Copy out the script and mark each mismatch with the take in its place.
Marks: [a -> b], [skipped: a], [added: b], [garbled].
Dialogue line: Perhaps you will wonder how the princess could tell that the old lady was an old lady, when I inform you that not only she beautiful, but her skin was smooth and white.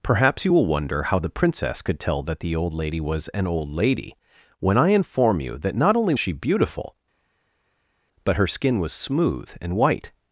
Perhaps you will wonder how the princess could tell that the old lady was an old lady, when I inform you that not only she beautiful, but her skin was smooth and white.